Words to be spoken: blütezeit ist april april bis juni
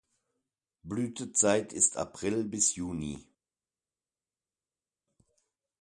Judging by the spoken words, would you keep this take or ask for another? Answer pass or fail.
fail